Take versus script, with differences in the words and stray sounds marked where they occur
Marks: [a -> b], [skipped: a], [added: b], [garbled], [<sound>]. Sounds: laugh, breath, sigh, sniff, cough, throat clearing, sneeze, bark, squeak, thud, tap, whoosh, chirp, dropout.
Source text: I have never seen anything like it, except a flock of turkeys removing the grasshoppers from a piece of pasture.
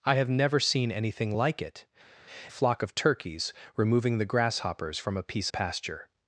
I have never seen anything like it, [skipped: except] a flock of turkeys removing the grasshoppers from a piece [skipped: of] pasture.